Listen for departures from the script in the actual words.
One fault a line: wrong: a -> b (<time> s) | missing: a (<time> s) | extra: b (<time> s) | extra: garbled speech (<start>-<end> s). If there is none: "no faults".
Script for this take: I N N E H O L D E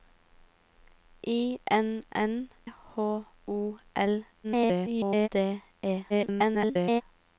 missing: E (2.5 s)
extra: garbled speech (4.4-5.3 s)
extra: garbled speech (6.1-7.0 s)